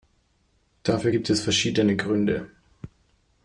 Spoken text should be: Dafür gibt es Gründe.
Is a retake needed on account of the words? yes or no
yes